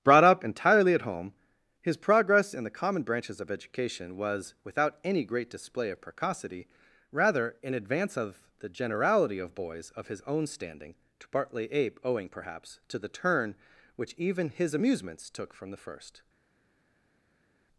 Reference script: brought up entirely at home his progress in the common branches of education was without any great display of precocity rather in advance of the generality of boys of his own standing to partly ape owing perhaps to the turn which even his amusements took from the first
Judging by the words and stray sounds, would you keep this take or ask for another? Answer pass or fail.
pass